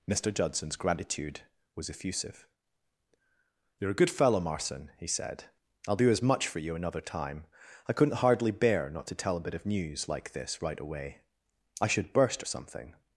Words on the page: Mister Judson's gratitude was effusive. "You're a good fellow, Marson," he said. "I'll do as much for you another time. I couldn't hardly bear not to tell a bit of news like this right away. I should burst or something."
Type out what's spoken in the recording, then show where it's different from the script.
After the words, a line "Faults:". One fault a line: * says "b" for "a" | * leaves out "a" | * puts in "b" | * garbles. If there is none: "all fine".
Mister Judson's gratitude was effusive. "You're a good fellow, Marson," he said. "I'll do as much for you another time. I couldn't hardly bear not to tell a bit of news like this right away. I should burst or something."
Faults:
all fine